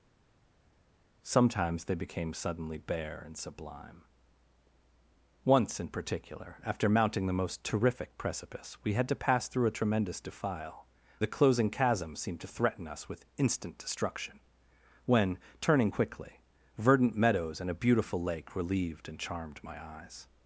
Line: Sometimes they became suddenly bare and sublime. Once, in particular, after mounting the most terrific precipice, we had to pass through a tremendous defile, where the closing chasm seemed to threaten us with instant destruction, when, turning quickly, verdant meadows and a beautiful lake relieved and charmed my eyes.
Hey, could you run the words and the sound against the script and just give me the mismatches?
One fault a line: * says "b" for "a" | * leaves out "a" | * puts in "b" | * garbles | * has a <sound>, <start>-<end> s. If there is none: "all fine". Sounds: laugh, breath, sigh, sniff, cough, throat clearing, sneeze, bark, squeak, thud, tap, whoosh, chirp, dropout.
* leaves out "where"